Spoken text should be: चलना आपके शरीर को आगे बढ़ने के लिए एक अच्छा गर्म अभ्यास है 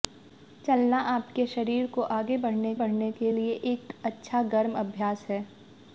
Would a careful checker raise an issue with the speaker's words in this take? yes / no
yes